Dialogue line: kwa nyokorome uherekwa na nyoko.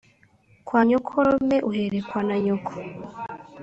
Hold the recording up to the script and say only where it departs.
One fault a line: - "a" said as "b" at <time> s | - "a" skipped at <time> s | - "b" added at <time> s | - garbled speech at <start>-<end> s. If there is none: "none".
none